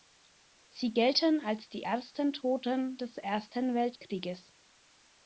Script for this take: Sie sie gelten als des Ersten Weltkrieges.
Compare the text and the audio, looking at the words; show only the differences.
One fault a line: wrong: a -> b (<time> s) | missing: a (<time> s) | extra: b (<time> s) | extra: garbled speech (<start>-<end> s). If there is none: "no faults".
missing: sie (0.9 s)
extra: die ersten Toten (1.7 s)